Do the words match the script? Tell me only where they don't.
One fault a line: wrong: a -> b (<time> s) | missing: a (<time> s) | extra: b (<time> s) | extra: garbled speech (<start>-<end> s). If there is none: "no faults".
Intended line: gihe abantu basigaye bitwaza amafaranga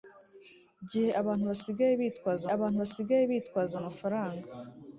extra: abantu basigaye bitwaza (2.6 s)